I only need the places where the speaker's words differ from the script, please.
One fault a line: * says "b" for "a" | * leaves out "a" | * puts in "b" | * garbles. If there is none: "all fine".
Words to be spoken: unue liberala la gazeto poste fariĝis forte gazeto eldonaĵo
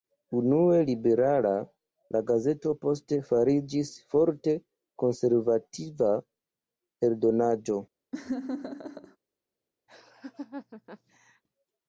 * says "konservativa" for "gazeto"